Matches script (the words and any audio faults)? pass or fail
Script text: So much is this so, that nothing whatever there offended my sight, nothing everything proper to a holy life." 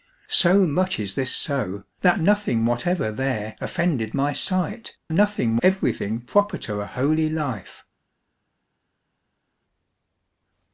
pass